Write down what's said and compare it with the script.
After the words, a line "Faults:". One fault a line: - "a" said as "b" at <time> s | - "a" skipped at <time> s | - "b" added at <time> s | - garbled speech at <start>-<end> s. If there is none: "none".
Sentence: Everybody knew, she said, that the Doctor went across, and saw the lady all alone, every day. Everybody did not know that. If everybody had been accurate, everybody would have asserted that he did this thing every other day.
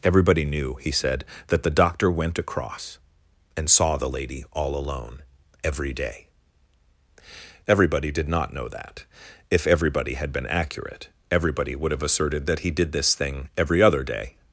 Everybody knew, he said, that the Doctor went across, and saw the lady all alone, every day. Everybody did not know that. If everybody had been accurate, everybody would have asserted that he did this thing every other day.
Faults:
- "she" said as "he" at 0.8 s